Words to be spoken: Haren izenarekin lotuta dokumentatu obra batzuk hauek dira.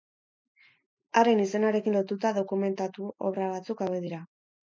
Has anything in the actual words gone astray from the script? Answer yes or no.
no